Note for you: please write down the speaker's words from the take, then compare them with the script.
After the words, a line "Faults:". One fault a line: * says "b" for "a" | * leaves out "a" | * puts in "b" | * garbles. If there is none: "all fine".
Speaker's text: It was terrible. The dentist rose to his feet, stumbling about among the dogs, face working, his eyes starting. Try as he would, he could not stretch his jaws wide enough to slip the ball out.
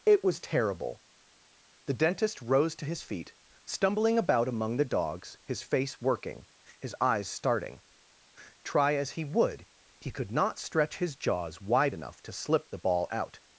It was terrible. The dentist rose to his feet, stumbling about among the dogs, his face working, his eyes starting. Try as he would, he could not stretch his jaws wide enough to slip the ball out.
Faults:
* puts in "his"